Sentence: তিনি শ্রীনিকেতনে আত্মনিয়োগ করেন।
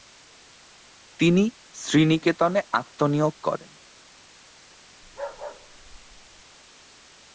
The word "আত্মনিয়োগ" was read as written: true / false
true